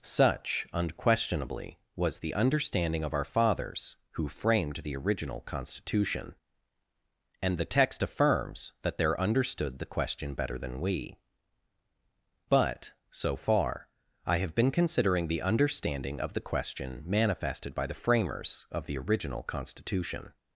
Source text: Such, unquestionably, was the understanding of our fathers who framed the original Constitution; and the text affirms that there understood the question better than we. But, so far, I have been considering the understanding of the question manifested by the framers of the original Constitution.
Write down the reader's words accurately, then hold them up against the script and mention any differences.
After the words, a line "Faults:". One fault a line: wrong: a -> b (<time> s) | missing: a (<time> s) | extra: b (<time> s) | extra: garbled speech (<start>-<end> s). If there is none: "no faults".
Such, unquestionably, was the understanding of our fathers who framed the original Constitution; and the text affirms that there understood the question better than we. But, so far, I have been considering the understanding of the question manifested by the framers of the original Constitution.
Faults:
no faults